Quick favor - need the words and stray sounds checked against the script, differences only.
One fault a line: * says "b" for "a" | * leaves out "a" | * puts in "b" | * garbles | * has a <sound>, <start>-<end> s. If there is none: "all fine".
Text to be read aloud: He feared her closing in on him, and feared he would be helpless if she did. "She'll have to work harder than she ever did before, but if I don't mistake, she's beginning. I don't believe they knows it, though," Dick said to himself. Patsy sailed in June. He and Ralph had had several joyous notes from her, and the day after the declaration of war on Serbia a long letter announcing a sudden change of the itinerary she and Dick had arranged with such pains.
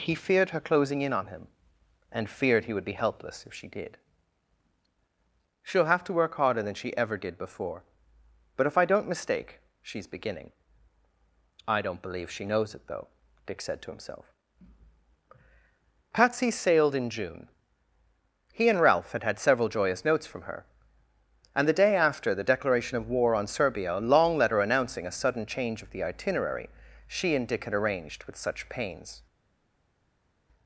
* says "she" for "they"